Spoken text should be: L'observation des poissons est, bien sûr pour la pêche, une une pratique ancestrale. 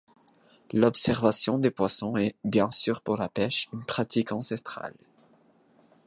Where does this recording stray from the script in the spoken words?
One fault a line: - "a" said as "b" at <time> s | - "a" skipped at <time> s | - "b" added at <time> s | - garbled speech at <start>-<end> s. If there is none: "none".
- "une" skipped at 3.8 s